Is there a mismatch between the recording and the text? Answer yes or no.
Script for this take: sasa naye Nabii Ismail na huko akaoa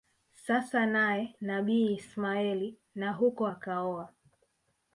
no